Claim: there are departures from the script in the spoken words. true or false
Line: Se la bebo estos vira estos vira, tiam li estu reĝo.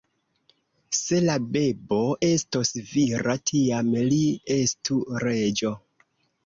true